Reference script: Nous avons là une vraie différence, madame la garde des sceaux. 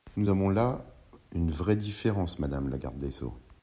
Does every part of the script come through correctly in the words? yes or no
yes